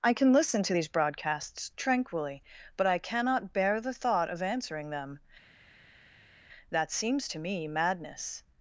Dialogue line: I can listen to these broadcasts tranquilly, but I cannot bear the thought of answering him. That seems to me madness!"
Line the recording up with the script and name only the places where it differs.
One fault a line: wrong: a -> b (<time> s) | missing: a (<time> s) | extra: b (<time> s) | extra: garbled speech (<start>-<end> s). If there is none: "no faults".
wrong: him -> them (4.9 s)